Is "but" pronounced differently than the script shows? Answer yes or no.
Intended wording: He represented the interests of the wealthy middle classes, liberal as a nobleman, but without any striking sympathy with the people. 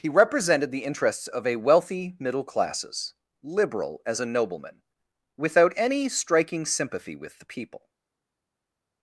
yes